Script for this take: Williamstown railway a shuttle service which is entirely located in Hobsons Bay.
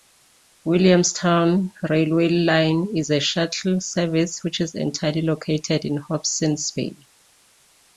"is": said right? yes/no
yes